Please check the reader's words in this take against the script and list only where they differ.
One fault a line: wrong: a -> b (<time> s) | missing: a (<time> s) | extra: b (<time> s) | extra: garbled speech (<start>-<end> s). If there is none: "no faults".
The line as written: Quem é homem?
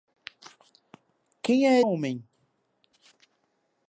no faults